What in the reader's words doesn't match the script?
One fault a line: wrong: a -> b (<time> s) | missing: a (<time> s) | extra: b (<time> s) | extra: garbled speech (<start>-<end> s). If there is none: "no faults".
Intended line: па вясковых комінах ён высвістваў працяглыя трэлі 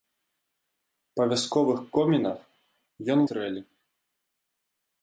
missing: высвістваў працяглыя (3.2 s)